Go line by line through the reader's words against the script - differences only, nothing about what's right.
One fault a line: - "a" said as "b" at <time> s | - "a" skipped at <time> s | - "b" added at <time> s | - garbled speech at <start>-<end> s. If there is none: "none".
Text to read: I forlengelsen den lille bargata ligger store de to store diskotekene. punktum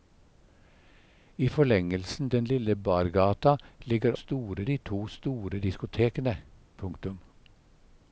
none